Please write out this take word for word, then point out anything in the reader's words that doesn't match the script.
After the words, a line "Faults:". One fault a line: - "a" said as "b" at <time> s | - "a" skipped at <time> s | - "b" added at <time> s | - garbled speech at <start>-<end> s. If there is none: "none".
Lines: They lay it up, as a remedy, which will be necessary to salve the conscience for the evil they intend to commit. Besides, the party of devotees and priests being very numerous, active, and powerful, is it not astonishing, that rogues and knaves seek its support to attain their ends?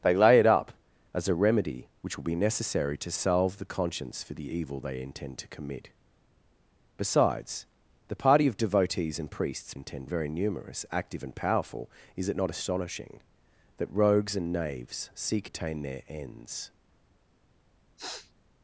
They lay it up, as a remedy, which will be necessary to salve the conscience for the evil they intend to commit. Besides, the party of devotees and priests intend very numerous, active, and powerful, is it not astonishing, that rogues and knaves seek attain their ends?
Faults:
- "being" said as "intend" at 9.7 s
- "its support to" skipped at 15.5 s